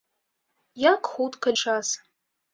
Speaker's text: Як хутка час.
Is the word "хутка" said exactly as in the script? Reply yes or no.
yes